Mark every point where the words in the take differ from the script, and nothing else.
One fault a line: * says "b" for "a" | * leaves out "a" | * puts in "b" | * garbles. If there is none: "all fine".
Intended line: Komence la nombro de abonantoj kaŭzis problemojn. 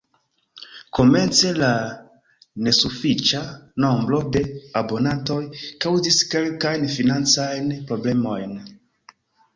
* puts in "nesufiĉa"
* puts in "kelkajn financajn"